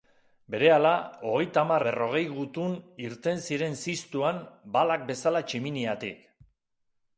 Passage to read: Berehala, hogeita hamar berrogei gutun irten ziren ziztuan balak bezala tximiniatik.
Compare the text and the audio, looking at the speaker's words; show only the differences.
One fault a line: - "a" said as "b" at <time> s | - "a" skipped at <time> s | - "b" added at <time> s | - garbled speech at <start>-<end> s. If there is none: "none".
none